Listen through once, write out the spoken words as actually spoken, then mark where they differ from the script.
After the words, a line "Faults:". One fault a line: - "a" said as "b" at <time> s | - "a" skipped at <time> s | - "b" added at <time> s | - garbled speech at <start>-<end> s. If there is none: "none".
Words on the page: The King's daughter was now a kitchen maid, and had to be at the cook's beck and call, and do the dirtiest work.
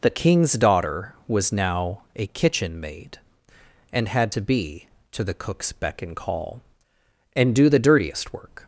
The King's daughter was now a kitchen maid, and had to be to the cook's beck and call, and do the dirtiest work.
Faults:
- "at" said as "to" at 5.1 s